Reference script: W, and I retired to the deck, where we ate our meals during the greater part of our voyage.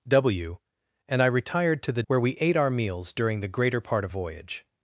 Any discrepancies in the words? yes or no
yes